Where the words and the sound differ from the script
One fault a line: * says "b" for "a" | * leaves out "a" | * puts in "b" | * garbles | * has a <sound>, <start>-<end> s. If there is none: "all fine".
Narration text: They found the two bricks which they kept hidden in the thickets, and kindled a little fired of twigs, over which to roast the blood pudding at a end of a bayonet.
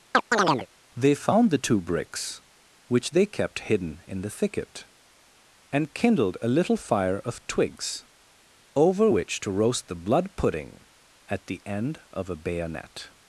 * has a chirp, 0.1-0.7 s
* says "thicket" for "thickets"
* says "fire" for "fired"
* says "the" for "a"